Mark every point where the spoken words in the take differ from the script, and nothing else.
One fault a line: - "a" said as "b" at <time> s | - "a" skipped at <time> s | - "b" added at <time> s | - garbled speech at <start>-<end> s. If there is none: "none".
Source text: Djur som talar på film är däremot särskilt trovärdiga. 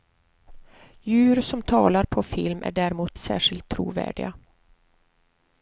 none